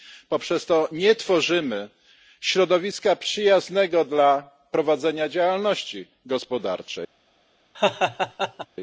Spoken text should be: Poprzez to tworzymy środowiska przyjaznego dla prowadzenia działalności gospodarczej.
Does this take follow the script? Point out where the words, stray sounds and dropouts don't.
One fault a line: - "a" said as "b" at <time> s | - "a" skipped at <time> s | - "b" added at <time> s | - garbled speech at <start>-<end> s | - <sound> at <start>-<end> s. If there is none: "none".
- "nie" added at 0.9 s
- laugh at 7.7-8.7 s